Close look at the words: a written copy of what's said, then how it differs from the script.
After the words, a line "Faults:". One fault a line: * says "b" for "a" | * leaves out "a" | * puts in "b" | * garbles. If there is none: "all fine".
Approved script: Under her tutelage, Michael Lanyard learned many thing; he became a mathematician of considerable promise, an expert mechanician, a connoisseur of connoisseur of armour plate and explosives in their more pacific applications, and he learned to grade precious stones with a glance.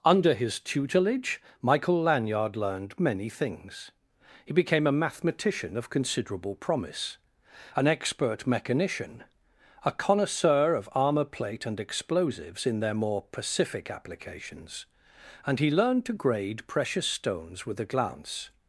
Under his tutelage, Michael Lanyard learned many things; he became a mathematician of considerable promise, an expert mechanician, a connoisseur of armour plate and explosives in their more pacific applications, and he learned to grade precious stones with a glance.
Faults:
* says "his" for "her"
* says "things" for "thing"
* leaves out "connoisseur of"